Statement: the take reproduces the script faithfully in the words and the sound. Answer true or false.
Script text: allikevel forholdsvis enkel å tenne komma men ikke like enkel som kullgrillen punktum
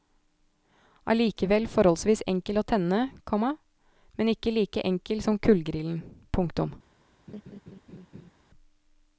false